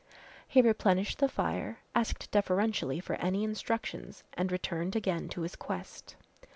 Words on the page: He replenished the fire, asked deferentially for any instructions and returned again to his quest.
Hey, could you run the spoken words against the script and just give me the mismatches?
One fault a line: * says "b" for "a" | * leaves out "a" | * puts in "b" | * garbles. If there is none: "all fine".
all fine